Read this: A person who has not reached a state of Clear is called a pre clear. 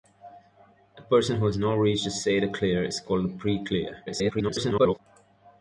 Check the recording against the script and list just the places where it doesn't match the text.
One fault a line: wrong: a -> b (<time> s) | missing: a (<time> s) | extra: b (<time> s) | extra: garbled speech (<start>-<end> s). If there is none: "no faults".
extra: garbled speech (4.1-5.0 s)